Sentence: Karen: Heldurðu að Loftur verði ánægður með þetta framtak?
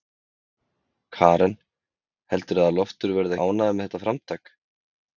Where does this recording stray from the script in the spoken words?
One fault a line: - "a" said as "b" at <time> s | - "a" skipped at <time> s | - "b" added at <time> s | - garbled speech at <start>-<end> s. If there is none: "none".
none